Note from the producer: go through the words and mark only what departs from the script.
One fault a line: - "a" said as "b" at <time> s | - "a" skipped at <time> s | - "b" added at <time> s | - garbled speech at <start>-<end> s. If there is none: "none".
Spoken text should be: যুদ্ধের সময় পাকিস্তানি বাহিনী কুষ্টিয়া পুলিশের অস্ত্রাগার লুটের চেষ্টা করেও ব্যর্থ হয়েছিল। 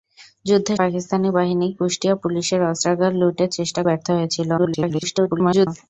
- "সময়" skipped at 0.8 s
- "করেও" skipped at 3.8 s
- garbled speech at 4.6-5.7 s